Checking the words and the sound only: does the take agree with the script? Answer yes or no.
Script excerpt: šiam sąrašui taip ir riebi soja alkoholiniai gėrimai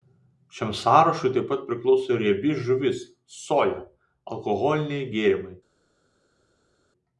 no